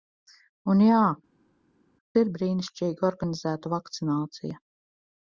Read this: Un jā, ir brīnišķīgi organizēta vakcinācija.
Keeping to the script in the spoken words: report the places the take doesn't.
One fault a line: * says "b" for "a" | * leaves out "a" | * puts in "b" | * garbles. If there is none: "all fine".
all fine